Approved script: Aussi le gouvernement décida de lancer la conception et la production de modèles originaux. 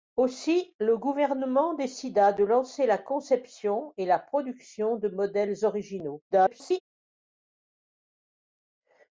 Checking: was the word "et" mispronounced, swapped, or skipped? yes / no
no